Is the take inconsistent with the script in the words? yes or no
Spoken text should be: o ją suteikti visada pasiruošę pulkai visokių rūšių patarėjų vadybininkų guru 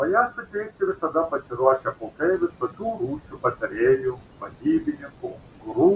no